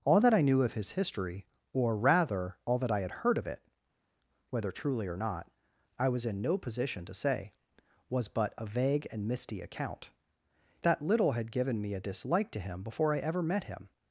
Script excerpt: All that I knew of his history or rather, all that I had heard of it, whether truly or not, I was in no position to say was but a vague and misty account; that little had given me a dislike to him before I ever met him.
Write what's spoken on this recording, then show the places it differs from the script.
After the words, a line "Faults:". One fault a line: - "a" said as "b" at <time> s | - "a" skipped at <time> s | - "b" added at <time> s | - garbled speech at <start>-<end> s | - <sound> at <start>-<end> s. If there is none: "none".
All that I knew of his history or rather, all that I had heard of it, whether truly or not, I was in no position to say was but a vague and misty account; that little had given me a dislike to him before I ever met him.
Faults:
none